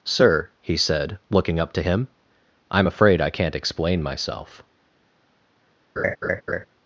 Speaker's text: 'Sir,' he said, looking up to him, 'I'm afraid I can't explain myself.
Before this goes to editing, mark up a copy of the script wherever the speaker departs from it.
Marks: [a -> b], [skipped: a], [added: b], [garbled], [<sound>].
'Sir,' he said, looking up to him, 'I'm afraid I can't explain myself. [laugh]